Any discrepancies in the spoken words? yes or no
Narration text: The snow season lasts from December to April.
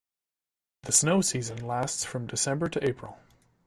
no